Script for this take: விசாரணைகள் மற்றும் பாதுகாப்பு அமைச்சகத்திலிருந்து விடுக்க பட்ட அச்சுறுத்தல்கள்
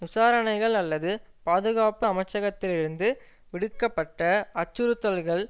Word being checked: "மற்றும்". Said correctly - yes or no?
no